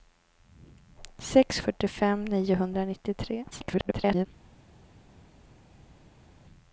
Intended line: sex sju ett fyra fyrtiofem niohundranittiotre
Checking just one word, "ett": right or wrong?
wrong